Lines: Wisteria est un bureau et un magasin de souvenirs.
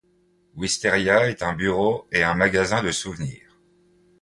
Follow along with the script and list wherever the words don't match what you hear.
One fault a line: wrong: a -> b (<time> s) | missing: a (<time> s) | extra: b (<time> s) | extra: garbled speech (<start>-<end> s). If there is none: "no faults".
no faults